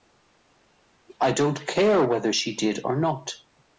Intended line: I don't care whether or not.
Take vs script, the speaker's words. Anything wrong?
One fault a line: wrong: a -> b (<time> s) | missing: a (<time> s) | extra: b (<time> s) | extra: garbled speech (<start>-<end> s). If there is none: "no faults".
extra: she did (2.3 s)